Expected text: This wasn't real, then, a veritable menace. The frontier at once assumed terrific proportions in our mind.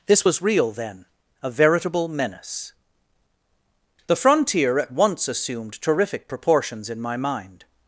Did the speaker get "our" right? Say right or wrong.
wrong